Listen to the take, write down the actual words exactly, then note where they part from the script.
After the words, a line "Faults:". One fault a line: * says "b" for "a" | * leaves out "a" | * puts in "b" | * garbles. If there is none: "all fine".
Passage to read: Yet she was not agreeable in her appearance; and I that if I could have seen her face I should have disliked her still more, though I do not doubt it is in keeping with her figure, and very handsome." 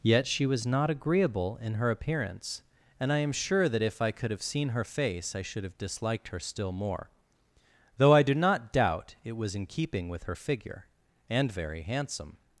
Yet she was not agreeable in her appearance; and I am sure that if I could have seen her face I should have disliked her still more, though I do not doubt it was in keeping with her figure, and very handsome."
Faults:
* puts in "am sure"
* says "was" for "is"